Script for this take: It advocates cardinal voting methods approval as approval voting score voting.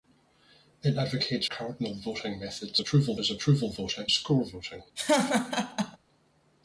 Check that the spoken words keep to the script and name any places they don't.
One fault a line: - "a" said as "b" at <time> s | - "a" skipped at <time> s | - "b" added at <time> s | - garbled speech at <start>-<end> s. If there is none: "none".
none